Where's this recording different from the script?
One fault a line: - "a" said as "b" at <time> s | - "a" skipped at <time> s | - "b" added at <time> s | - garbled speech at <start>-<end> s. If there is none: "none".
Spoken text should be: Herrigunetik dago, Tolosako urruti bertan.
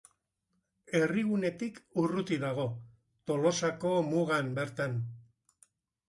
- "urruti" added at 2.0 s
- "urruti" said as "mugan" at 4.1 s